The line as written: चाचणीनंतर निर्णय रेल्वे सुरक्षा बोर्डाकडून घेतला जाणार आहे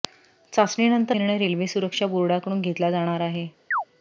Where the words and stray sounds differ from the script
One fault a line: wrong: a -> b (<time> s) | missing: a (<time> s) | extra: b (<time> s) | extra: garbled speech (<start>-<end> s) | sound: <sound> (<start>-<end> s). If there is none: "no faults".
sound: chirp (3.7-3.8 s)